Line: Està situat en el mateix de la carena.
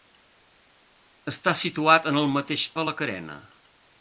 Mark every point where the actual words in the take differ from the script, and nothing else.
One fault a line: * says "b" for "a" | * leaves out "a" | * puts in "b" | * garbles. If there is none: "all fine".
all fine